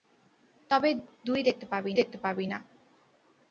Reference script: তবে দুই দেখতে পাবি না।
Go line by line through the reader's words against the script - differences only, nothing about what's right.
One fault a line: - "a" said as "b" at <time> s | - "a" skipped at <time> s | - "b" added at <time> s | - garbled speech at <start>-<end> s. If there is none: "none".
- "দেখতে পাবি" added at 1.9 s